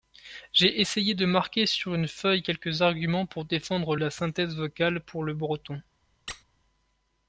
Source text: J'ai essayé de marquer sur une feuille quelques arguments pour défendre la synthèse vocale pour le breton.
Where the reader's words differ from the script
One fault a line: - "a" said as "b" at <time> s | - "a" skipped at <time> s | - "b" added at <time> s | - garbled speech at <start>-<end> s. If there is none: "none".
none